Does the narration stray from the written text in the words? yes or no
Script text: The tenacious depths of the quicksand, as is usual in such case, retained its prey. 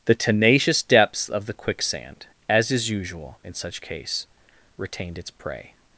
no